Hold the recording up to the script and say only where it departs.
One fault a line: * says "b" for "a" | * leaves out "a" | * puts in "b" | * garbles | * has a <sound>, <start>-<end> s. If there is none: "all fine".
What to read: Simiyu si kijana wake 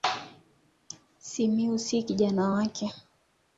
all fine